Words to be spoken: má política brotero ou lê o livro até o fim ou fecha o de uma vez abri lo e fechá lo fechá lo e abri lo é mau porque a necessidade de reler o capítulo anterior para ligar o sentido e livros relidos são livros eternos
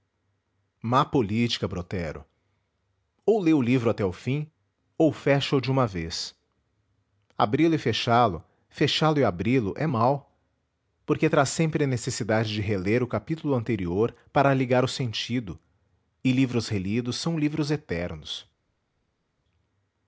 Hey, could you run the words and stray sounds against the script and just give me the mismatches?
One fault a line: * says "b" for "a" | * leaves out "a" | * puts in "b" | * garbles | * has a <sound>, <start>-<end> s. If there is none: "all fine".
* puts in "traz sempre"